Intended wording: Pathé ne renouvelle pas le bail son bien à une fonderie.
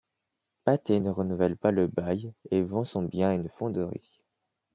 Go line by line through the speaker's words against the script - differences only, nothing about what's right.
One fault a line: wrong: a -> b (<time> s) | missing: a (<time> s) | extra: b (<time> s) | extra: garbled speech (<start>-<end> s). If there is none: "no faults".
extra: et vend (2.5 s)